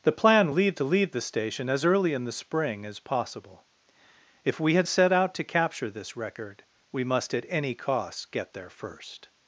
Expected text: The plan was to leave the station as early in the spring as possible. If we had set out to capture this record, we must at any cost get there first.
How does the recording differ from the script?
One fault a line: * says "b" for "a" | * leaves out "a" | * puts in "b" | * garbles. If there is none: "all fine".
* says "leave" for "was"